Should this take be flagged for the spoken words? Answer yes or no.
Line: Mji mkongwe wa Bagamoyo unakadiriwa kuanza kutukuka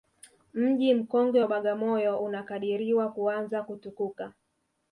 no